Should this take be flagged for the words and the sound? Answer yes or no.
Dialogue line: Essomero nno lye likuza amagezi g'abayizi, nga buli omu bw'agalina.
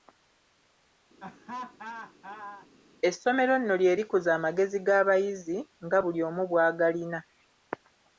yes